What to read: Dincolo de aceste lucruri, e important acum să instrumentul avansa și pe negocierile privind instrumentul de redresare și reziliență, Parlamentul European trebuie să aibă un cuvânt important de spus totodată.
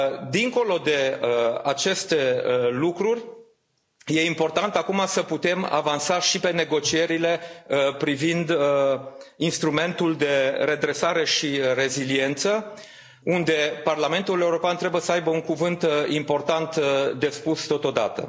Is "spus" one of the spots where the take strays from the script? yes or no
no